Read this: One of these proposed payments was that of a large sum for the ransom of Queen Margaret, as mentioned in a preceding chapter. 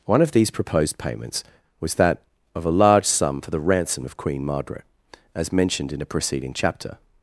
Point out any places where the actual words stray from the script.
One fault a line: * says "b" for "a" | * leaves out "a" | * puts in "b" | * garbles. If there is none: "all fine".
all fine